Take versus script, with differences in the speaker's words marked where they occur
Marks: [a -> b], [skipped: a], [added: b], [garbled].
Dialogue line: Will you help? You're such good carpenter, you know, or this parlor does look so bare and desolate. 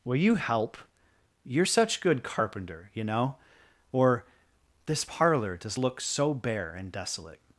Will you help? You're such good carpenter, you know, or this parlor does look so bare and desolate.